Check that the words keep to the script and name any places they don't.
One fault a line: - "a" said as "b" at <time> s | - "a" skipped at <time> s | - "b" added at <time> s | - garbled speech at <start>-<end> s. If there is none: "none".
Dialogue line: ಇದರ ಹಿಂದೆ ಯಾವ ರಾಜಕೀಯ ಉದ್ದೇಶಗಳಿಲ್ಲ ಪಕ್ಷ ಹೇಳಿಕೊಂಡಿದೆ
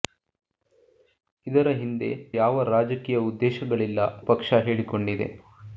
none